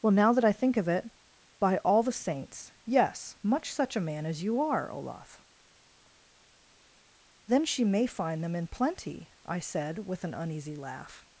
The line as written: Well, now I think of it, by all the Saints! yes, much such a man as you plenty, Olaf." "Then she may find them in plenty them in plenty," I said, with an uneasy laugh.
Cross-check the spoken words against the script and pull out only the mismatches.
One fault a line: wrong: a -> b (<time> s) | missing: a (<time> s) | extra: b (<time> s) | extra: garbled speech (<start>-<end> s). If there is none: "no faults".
extra: that (0.3 s)
wrong: plenty -> are (4.6 s)
missing: them in plenty (9.3 s)